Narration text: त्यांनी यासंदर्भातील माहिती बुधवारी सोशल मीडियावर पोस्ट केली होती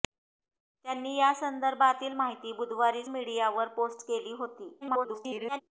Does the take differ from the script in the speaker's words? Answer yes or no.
yes